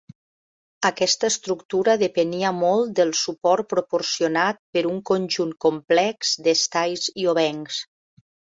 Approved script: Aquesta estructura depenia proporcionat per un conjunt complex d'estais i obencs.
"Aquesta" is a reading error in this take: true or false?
false